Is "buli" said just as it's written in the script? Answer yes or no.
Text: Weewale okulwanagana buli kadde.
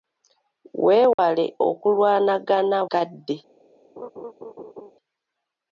no